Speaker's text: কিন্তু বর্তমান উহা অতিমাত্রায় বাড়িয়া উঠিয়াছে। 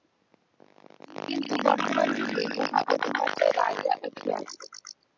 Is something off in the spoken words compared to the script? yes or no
yes